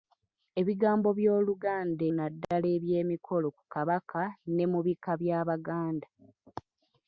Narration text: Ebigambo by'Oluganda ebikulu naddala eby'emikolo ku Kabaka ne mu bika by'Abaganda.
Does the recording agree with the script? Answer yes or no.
no